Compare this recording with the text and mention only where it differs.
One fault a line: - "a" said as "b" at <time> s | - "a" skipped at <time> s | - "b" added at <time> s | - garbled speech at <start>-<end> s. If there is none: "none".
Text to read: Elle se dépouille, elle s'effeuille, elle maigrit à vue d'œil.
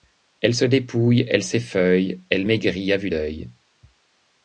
none